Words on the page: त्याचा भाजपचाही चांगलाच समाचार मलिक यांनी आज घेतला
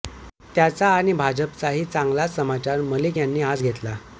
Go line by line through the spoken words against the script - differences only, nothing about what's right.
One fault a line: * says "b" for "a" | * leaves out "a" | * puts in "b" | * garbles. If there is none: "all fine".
* puts in "आणि"